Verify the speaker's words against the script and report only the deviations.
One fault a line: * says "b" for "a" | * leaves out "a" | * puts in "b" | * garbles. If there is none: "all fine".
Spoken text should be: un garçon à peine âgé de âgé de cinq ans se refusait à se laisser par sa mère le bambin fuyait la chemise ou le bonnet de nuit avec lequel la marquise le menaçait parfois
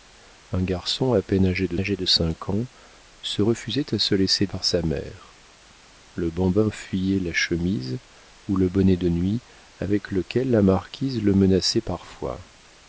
all fine